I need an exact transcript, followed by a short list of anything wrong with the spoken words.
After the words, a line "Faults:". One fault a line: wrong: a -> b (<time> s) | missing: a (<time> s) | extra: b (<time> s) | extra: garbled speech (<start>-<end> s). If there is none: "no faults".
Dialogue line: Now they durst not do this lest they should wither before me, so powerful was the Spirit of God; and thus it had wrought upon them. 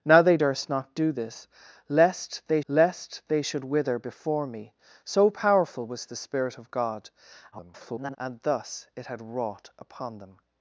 Now they durst not do this lest they lest they should wither before me, so powerful was the Spirit of God; [garbled] and thus it had wrought upon them.
Faults:
extra: lest they (2.7 s)
extra: garbled speech (7.5-8.2 s)